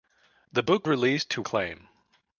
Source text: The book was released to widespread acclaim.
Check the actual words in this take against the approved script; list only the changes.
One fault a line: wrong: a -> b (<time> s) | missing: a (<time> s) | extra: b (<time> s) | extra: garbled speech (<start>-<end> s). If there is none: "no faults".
missing: was (0.9 s)
missing: widespread (1.4 s)